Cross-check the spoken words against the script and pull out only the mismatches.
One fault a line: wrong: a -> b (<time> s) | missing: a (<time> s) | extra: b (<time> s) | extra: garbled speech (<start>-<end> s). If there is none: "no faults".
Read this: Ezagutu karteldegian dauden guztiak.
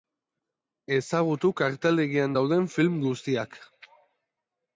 extra: film (2.8 s)